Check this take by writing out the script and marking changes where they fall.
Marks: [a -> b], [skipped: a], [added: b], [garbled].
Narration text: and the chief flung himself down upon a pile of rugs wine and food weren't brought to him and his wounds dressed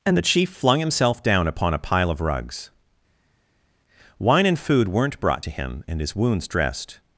and the chief flung himself down upon a pile of rugs wine and food weren't brought to him and his wounds dressed